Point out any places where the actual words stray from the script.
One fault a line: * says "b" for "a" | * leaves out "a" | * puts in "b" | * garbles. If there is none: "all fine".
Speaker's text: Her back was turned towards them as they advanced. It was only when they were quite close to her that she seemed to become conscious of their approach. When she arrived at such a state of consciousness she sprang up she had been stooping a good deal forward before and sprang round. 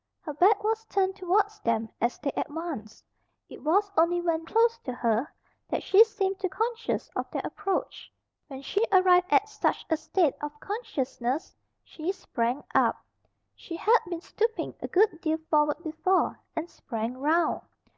* leaves out "they were quite"
* leaves out "become"